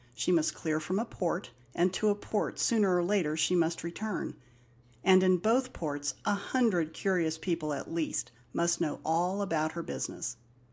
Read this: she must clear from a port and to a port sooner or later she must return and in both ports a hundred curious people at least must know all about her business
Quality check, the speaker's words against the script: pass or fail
pass